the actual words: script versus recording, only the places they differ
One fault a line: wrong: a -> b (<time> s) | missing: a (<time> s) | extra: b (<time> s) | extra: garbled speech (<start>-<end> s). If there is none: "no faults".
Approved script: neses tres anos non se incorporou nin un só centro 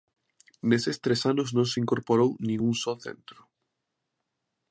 no faults